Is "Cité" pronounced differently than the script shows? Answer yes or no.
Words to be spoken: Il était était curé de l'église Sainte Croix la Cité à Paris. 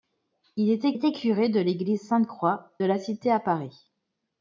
no